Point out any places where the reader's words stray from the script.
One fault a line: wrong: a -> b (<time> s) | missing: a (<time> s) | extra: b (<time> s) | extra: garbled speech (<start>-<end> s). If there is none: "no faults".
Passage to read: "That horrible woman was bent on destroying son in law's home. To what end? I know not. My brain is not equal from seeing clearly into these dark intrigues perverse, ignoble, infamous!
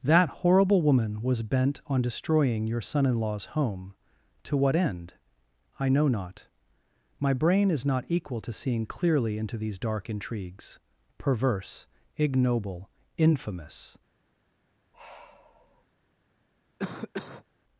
extra: your (2.6 s)
wrong: from -> to (8.4 s)